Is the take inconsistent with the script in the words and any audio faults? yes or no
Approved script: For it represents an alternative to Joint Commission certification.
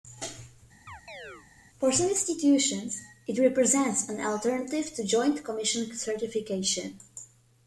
yes